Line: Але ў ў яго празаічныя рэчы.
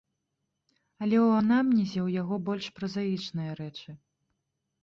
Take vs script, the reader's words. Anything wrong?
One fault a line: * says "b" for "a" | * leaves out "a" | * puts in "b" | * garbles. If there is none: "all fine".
* puts in "анамнезе"
* puts in "больш"